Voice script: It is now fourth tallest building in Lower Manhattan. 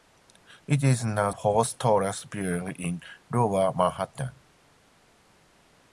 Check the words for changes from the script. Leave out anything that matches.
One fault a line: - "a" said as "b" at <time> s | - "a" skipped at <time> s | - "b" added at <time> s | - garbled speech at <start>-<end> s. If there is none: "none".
none